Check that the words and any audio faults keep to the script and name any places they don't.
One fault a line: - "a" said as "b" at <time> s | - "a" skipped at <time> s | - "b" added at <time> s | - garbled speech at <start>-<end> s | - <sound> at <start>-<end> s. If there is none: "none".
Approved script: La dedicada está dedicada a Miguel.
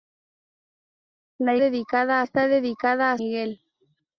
none